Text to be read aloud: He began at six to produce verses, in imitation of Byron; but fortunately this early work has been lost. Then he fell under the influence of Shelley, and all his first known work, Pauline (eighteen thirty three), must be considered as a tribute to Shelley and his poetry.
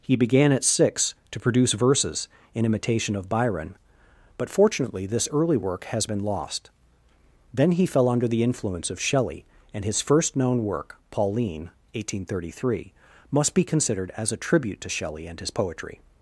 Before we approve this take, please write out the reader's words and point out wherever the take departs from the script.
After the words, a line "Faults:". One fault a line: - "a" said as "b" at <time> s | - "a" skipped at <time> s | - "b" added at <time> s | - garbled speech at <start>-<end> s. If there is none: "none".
He began at six to produce verses, in imitation of Byron; but fortunately this early work has been lost. Then he fell under the influence of Shelley, and his first known work, Pauline (eighteen thirty three), must be considered as a tribute to Shelley and his poetry.
Faults:
- "all" skipped at 9.8 s